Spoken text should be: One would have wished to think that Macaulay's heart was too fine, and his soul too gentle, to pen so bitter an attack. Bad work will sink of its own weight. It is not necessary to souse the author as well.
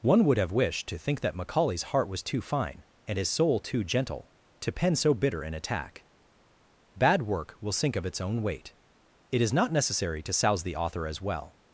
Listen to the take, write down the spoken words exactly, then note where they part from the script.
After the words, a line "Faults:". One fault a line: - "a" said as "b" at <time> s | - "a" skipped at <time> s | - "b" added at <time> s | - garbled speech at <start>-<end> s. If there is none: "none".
One would have wished to think that Macaulay's heart was too fine, and his soul too gentle, to pen so bitter an attack. Bad work will sink of its own weight. It is not necessary to souse the author as well.
Faults:
none